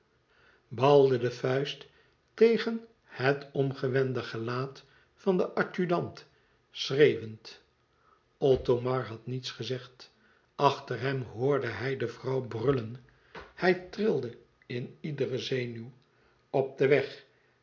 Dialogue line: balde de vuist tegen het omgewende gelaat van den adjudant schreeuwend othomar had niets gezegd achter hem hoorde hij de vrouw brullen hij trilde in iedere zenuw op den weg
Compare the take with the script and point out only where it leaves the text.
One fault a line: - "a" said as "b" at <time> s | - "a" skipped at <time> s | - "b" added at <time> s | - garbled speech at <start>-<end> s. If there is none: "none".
none